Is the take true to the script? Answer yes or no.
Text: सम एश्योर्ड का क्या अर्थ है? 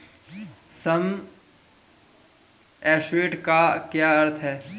yes